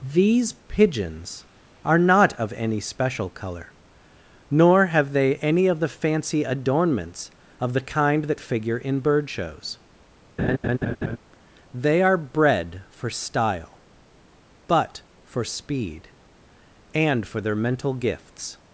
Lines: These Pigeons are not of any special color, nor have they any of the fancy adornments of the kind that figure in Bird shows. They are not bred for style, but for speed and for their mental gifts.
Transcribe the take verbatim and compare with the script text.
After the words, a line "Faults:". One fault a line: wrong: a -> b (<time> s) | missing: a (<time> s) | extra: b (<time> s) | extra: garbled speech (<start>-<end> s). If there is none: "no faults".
These Pigeons are not of any special color, nor have they any of the fancy adornments of the kind that figure in Bird shows. They are bred for style, but for speed and for their mental gifts.
Faults:
missing: not (12.2 s)